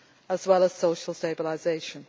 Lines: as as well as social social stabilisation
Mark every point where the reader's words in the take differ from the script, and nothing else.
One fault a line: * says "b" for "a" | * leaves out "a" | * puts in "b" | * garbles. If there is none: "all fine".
* leaves out "as"
* leaves out "social"